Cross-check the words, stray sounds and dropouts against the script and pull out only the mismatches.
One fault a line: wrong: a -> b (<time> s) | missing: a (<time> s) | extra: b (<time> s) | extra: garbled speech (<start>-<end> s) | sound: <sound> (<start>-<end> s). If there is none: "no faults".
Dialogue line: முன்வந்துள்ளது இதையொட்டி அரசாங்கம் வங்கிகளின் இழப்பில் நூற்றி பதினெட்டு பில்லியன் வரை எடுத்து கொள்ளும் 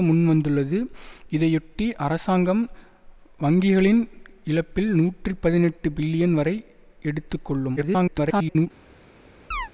extra: garbled speech (7.8-8.7 s)
sound: chirp (9.5-9.7 s)